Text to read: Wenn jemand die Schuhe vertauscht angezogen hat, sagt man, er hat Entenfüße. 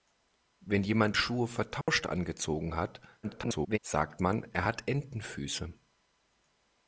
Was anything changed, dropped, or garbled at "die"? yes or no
yes